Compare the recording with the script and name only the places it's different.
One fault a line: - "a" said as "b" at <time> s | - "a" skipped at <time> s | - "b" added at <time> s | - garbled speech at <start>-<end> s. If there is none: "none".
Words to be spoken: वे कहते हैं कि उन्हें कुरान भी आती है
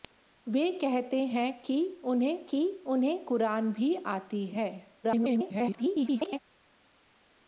- "कि उन्हें" added at 2.5 s
- garbled speech at 5.0-6.4 s